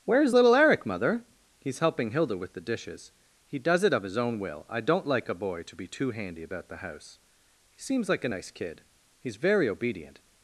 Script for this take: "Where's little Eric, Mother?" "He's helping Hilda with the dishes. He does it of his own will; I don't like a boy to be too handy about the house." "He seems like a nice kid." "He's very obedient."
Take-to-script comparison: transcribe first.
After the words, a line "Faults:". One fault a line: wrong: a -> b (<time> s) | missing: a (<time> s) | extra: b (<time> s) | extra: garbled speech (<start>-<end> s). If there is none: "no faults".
"Where's little Eric, Mother?" "He's helping Hilda with the dishes. He does it of his own will; I don't like a boy to be too handy about the house." "He seems like a nice kid." "He's very obedient."
Faults:
no faults